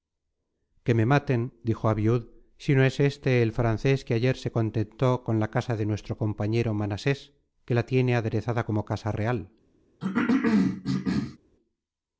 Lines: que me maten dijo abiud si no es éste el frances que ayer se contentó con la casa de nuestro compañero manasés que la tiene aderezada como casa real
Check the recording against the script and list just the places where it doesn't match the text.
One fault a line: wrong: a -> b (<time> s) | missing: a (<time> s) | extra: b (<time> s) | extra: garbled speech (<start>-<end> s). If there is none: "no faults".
no faults